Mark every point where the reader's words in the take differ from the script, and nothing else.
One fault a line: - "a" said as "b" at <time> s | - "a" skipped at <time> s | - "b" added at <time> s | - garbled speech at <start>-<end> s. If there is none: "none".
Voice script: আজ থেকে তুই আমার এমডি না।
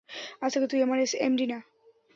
none